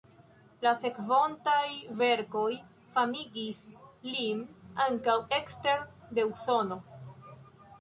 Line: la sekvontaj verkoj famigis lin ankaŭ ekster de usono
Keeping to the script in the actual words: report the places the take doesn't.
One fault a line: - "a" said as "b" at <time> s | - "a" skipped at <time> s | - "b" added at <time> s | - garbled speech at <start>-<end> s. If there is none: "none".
none